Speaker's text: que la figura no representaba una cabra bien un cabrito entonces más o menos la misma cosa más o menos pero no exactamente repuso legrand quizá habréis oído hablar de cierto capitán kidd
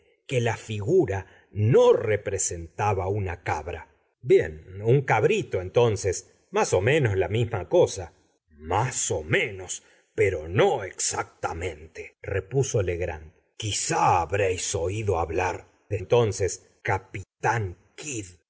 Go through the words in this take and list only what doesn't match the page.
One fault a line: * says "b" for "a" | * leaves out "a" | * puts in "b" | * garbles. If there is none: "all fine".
* says "entonces" for "cierto"